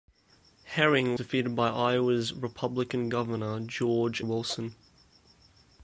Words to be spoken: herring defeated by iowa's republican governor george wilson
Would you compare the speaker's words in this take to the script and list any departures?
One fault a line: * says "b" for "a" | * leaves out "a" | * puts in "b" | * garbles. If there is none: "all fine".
all fine